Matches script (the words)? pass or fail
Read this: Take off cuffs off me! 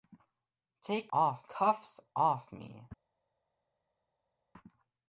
pass